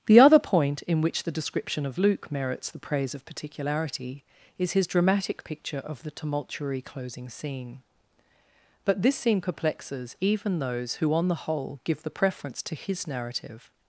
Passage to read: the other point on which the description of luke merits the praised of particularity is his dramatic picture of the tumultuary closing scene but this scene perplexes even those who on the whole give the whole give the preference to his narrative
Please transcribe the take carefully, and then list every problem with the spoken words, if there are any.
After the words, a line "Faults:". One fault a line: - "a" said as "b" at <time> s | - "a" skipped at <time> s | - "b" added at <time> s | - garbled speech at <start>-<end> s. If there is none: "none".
the other point in which the description of luke merits the praise of particularity is his dramatic picture of the tumultuary closing scene but this scene perplexes even those who on the whole give the preference to his narrative
Faults:
- "on" said as "in" at 0.8 s
- "praised" said as "praise" at 2.8 s
- "whole give the" skipped at 12.1 s